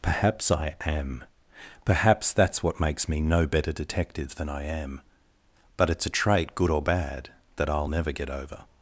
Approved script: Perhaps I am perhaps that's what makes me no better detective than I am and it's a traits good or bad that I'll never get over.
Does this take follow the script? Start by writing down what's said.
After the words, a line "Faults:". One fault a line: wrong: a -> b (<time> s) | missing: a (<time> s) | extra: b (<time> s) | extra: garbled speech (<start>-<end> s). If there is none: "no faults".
Perhaps I am perhaps that's what makes me no better detective than I am but it's a trait good or bad that I'll never get over.
Faults:
wrong: and -> but (5.8 s)
wrong: traits -> trait (6.1 s)